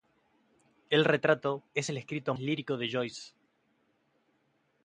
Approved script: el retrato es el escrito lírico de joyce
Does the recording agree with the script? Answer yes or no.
yes